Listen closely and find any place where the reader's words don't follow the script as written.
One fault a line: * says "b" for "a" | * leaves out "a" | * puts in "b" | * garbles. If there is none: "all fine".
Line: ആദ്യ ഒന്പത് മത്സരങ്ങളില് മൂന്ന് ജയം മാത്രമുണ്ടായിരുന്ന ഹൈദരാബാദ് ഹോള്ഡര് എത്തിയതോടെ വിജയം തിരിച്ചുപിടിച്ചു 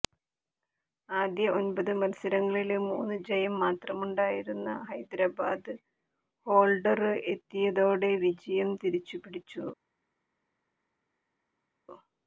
all fine